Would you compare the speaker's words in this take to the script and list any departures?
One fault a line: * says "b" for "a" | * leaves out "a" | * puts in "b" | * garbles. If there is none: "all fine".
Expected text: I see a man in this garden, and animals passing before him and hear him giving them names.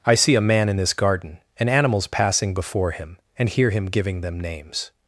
all fine